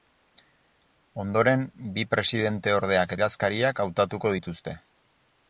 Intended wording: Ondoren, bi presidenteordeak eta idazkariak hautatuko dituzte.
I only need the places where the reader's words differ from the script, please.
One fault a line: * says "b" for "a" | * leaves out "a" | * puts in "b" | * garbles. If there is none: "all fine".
* leaves out "eta"